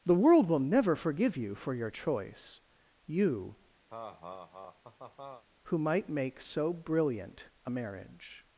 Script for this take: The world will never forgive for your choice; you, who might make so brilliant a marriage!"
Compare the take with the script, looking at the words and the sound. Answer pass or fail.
fail